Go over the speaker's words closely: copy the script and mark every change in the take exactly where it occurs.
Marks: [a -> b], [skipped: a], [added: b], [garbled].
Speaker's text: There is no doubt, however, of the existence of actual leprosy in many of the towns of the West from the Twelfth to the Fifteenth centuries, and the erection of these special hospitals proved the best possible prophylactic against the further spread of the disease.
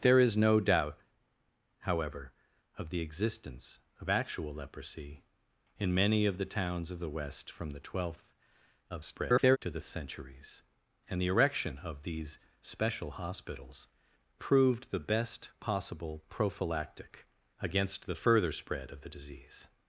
There is no doubt, however, of the existence of actual leprosy in many of the towns of the West from the Twelfth [garbled] to the [skipped: Fifteenth] centuries, and the erection of these special hospitals proved the best possible prophylactic against the further spread of the disease.